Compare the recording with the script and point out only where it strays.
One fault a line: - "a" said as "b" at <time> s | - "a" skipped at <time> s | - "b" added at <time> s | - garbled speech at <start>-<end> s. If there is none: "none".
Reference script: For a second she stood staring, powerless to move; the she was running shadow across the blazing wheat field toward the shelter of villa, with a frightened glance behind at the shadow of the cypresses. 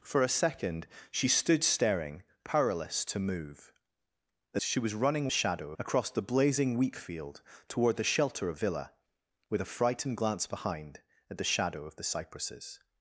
none